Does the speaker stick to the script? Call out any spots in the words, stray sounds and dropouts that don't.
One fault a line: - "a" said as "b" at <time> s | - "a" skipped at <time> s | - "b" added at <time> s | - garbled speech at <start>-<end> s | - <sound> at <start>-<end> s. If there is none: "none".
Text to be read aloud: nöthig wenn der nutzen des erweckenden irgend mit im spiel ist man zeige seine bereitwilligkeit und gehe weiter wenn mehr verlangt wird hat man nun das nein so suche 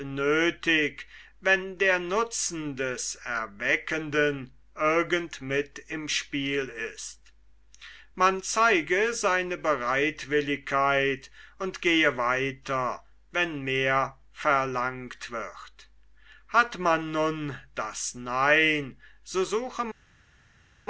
none